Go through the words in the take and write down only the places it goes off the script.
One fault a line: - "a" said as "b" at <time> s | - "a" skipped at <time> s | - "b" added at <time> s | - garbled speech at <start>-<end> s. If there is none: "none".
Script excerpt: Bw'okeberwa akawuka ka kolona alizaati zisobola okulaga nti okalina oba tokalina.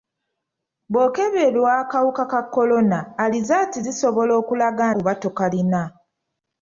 - "nti okalina" skipped at 4.8 s